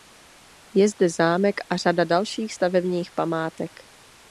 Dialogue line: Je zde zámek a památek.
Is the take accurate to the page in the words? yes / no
no